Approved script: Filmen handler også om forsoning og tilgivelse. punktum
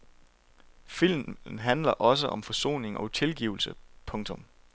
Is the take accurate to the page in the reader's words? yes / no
yes